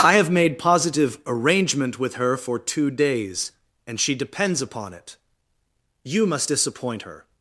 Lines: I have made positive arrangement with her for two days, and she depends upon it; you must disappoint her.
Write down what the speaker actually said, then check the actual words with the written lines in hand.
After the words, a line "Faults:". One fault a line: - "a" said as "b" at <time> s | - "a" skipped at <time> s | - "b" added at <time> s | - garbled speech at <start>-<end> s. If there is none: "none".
I have made positive arrangement with her for two days, and she depends upon it; you must disappoint her.
Faults:
none